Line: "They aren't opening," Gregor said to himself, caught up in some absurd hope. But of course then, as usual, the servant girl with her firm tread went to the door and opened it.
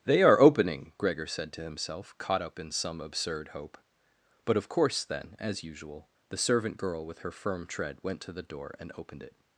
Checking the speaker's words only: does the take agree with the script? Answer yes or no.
no